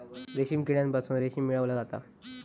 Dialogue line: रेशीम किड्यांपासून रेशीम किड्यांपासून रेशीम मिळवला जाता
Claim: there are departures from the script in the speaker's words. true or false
true